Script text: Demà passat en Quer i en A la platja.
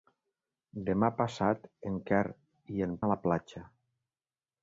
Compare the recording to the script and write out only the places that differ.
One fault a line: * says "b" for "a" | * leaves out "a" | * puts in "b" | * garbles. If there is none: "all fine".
all fine